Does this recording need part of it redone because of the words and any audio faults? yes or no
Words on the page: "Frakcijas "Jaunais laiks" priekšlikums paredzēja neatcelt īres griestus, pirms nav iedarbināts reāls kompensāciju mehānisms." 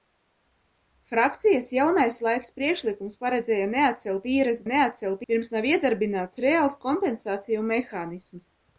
yes